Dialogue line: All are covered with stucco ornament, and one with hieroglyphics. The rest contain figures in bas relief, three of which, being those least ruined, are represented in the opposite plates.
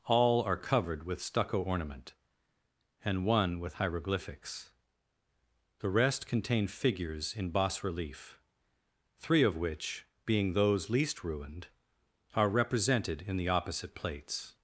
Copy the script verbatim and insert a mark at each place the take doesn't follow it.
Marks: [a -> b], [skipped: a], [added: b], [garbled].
All are covered with stucco ornament, and one with hieroglyphics. The rest contain figures in bas relief, three of which, being those least ruined, are represented in the opposite plates.